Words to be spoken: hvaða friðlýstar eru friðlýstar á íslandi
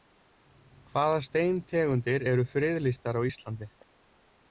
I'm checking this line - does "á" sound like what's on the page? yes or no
yes